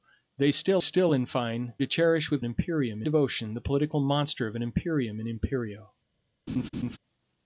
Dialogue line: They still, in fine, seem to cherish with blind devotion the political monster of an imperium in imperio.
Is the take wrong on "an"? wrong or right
right